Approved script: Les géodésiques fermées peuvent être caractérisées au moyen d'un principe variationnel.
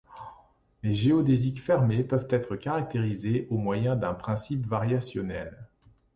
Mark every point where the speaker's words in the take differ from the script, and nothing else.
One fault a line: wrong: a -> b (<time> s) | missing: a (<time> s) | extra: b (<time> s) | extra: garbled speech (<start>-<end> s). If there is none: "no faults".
no faults